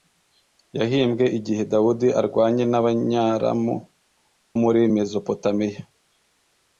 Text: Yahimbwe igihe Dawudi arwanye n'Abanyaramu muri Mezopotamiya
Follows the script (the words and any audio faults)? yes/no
yes